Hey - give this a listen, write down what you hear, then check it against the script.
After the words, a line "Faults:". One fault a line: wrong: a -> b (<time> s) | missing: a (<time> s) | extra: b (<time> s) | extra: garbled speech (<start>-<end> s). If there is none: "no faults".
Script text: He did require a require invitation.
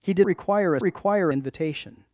He did require a require invitation.
Faults:
no faults